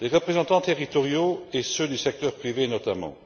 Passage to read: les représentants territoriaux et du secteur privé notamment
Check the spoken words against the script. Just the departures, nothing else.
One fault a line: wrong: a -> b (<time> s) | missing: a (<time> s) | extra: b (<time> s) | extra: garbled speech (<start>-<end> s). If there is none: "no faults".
extra: ceux (1.6 s)